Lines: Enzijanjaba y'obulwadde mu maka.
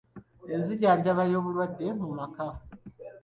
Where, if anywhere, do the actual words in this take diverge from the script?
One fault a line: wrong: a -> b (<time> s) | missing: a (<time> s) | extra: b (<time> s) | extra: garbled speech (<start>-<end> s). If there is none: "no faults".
no faults